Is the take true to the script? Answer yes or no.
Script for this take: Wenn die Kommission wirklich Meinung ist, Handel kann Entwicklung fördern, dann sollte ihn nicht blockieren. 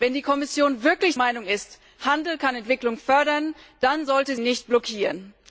yes